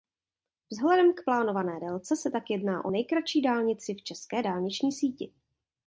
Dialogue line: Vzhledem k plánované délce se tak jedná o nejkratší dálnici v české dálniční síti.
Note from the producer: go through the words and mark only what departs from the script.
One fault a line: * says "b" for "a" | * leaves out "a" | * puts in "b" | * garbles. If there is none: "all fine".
all fine